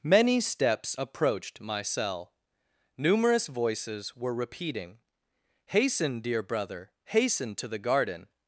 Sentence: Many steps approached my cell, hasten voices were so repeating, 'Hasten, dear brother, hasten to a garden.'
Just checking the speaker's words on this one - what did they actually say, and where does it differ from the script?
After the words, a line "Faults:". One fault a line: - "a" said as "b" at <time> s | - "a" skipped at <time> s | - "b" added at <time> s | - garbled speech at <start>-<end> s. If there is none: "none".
Many steps approached my cell, numerous voices were repeating, 'Hasten, dear brother, hasten to the garden.'
Faults:
- "hasten" said as "numerous" at 3.0 s
- "so" skipped at 4.3 s
- "a" said as "the" at 7.7 s